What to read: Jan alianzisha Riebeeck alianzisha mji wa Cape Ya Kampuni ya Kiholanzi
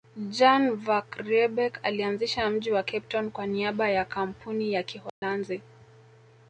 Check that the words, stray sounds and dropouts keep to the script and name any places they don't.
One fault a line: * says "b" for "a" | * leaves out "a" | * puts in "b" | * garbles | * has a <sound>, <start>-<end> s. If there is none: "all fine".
* says "van" for "alianzisha"
* puts in "Town kwa niaba"
* has a dropout, 5.1-5.2 s